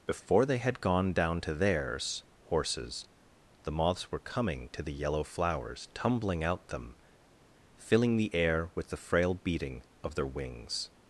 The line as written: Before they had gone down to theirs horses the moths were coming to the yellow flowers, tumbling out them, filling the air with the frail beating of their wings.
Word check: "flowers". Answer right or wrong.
right